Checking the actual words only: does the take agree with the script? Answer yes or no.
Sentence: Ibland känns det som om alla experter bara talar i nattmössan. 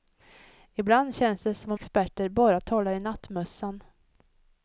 no